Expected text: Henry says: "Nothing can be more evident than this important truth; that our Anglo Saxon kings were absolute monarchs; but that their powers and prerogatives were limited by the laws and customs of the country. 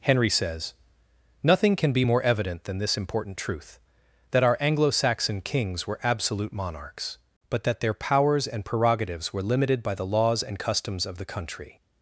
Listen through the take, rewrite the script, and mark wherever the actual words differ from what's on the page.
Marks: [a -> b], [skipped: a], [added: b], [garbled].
Henry says: "Nothing can be more evident than this important truth; that our Anglo Saxon kings were absolute monarchs; but that their powers and prerogatives were limited by the laws and customs of the country.